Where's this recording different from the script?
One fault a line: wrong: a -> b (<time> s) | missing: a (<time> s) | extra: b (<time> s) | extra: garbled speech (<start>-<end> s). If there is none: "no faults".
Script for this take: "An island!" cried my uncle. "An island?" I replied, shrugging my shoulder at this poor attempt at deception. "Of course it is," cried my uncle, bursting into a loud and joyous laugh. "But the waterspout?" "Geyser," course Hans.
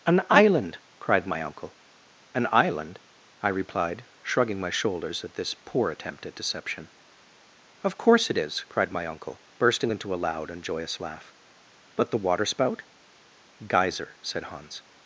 wrong: shoulder -> shoulders (4.7 s)
wrong: course -> said (14.2 s)